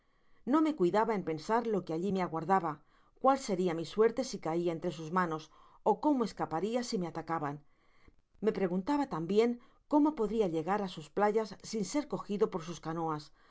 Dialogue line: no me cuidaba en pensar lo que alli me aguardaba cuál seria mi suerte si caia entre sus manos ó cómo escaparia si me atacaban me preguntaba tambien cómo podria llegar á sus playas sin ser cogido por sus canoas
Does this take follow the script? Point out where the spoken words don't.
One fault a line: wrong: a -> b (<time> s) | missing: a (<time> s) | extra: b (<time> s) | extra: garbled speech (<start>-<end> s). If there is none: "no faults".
no faults